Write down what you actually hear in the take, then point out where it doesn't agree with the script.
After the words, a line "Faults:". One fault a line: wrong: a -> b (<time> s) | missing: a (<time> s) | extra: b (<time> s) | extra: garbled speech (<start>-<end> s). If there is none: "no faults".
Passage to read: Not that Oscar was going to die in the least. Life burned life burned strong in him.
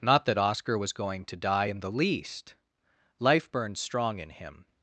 Not that Oscar was going to die in the least. Life burned strong in him.
Faults:
missing: life burned (3.8 s)